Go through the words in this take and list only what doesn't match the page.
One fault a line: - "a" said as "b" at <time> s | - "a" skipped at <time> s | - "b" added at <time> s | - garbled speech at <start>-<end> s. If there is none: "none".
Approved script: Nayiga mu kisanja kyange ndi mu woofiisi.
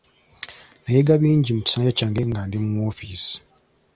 - "bingi" added at 1.2 s
- "nga" added at 2.3 s